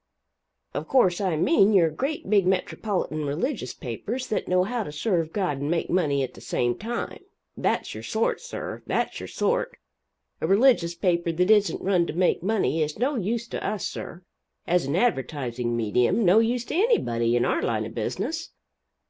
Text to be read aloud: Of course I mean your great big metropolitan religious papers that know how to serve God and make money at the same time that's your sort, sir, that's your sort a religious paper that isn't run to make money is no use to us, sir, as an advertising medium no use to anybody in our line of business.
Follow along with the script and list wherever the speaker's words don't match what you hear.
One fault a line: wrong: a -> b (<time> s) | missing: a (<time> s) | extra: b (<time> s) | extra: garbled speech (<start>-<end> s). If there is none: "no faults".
no faults